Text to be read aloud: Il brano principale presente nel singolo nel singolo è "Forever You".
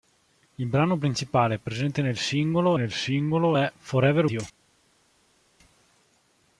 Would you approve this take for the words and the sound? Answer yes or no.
yes